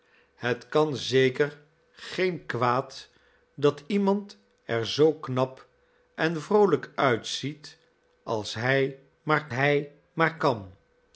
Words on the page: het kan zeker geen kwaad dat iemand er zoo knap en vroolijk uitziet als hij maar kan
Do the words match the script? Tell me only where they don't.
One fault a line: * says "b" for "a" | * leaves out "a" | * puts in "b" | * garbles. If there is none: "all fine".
* puts in "hij maar"